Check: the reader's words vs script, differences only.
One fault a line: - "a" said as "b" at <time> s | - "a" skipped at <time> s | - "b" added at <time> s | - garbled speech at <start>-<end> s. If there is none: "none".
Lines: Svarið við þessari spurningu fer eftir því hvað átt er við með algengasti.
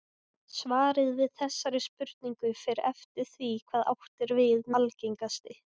- "með" skipped at 4.7 s